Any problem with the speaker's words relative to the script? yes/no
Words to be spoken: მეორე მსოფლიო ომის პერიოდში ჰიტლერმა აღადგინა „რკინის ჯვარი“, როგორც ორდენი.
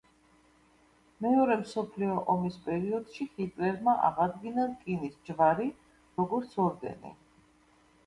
no